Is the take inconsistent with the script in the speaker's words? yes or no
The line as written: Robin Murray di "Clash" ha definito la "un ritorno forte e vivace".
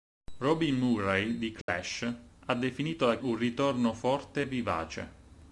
no